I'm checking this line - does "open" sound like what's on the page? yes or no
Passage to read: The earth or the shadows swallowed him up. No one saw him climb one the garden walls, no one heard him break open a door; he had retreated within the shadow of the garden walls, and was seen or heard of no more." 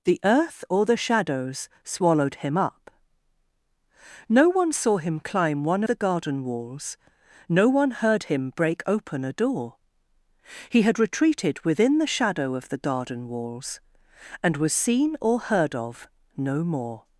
yes